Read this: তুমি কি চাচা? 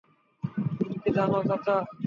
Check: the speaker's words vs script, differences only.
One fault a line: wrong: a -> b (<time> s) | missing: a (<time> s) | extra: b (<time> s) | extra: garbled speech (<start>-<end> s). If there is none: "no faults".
extra: জানো (1.2 s)